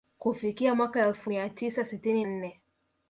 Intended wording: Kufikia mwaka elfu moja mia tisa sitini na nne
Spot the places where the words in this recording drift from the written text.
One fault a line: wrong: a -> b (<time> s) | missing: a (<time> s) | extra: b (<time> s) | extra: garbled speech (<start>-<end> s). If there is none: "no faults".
missing: moja (1.3 s)
missing: na (2.3 s)